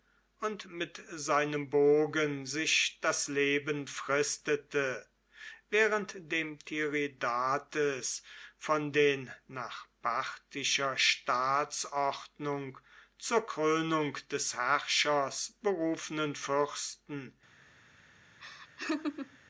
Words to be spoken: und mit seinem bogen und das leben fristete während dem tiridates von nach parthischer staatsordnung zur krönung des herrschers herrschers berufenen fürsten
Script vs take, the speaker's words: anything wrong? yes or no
yes